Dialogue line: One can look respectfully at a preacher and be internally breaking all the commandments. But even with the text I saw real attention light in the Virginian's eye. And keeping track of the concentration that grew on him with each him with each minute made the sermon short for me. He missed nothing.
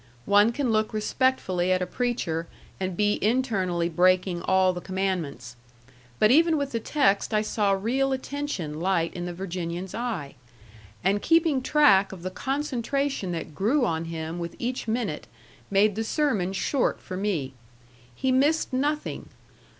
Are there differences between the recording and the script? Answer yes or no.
yes